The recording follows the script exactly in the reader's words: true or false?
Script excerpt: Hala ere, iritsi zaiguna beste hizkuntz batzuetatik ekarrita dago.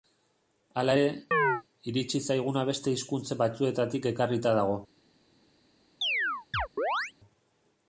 true